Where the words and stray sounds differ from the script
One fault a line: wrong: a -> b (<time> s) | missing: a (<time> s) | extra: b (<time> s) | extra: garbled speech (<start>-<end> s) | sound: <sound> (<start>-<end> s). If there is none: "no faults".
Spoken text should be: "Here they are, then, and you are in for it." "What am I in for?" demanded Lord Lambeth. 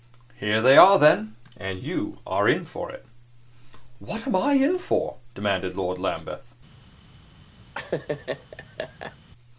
sound: laugh (7.7-9.2 s)